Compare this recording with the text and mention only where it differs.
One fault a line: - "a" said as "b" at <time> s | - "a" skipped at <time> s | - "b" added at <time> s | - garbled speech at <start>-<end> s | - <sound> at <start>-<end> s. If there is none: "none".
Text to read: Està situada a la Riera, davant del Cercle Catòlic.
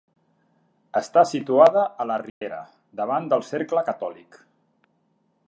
- dropout at 2.3-2.4 s